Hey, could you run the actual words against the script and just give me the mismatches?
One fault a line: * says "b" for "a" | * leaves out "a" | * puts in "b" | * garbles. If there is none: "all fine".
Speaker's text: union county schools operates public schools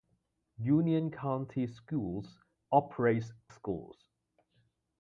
* leaves out "public"